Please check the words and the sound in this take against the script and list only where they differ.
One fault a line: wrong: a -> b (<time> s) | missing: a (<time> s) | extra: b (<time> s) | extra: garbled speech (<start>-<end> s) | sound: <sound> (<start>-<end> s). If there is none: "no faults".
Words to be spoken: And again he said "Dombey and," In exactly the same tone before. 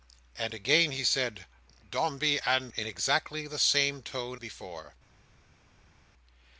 no faults